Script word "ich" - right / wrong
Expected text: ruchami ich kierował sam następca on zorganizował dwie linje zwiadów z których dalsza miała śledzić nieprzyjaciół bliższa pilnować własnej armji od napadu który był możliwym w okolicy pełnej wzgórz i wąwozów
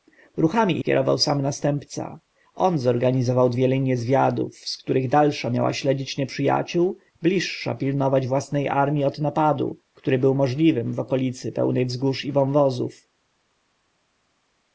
wrong